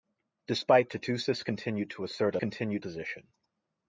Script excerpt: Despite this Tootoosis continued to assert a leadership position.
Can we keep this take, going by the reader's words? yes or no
no